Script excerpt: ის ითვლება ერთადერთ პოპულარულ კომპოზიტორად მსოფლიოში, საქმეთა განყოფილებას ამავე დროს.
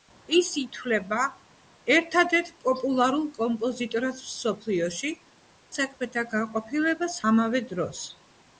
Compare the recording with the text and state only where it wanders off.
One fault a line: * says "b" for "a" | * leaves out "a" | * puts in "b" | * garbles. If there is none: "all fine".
all fine